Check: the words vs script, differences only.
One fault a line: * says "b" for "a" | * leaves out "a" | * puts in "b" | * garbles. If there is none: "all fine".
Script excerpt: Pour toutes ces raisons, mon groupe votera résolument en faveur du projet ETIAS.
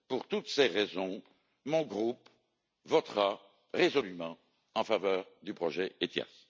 all fine